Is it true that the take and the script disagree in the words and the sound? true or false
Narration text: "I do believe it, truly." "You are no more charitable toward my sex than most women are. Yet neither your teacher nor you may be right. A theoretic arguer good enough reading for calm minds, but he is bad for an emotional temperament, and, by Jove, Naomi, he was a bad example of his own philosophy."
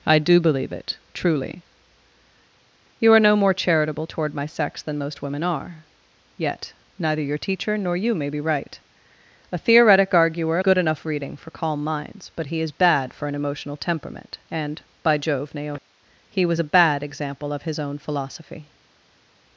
false